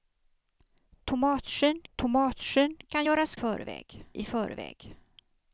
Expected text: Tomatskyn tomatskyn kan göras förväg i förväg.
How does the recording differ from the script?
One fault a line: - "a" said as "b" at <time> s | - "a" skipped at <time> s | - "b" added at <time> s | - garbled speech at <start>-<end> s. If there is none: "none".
none